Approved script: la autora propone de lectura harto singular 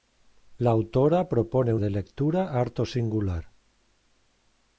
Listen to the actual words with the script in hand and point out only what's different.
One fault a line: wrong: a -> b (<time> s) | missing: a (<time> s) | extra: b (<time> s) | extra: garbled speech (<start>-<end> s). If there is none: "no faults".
no faults